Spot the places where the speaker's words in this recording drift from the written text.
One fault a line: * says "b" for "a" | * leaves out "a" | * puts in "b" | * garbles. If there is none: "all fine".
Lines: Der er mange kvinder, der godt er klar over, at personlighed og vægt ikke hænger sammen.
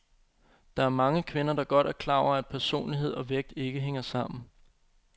all fine